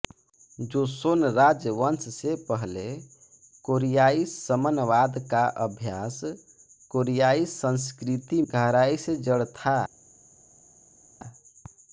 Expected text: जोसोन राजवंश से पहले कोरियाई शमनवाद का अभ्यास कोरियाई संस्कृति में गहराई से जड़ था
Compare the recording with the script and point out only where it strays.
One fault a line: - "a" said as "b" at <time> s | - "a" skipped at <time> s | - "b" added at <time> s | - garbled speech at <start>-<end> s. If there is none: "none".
- "में" skipped at 8.4 s